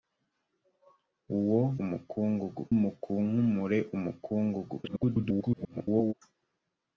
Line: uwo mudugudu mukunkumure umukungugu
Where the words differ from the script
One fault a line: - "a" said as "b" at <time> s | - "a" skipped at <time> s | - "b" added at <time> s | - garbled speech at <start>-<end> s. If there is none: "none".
- "mudugudu" said as "umukungugu" at 1.8 s
- garbled speech at 4.8-6.1 s